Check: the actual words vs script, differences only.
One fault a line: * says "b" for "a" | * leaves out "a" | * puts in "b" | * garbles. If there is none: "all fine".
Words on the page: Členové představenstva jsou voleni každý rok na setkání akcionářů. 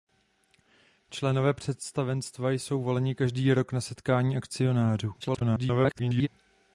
* garbles